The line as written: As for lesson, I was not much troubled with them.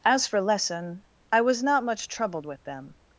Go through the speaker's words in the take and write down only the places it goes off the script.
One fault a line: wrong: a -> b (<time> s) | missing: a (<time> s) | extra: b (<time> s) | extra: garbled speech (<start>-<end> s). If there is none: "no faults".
no faults